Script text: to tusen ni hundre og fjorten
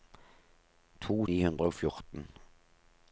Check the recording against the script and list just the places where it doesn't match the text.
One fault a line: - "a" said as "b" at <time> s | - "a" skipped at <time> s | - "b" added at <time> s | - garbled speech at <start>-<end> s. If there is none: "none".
- "tusen" skipped at 1.2 s